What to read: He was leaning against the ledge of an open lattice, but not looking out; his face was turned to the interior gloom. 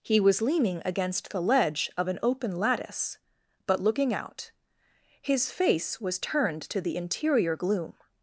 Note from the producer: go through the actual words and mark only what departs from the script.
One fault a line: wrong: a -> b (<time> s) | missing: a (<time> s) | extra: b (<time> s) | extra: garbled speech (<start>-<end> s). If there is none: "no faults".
missing: not (3.8 s)